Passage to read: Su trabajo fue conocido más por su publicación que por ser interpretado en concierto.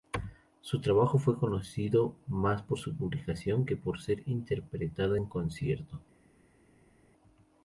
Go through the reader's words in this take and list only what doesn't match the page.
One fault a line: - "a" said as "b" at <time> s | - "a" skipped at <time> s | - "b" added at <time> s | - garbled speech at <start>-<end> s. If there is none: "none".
none